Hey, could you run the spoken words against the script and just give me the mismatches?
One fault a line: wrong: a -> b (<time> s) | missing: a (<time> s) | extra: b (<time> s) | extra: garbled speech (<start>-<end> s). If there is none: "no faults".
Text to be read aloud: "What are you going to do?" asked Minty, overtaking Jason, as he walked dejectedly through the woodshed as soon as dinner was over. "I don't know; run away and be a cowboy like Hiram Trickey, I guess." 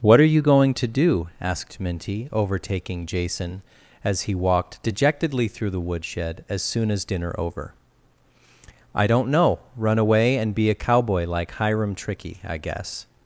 missing: was (7.3 s)